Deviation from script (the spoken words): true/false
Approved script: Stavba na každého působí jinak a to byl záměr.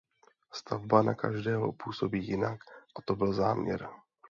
false